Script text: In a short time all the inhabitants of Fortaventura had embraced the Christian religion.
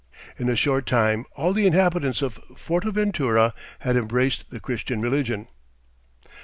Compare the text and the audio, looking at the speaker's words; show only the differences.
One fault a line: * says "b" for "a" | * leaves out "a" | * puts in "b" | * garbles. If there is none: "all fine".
all fine